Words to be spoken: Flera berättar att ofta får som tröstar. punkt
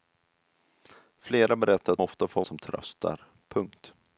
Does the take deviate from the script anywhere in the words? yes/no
no